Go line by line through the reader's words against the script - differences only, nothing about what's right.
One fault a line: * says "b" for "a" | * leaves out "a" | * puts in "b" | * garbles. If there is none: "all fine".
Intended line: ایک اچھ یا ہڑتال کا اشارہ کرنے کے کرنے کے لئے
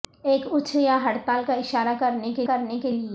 all fine